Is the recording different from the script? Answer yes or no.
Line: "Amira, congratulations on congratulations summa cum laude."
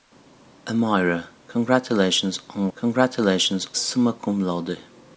no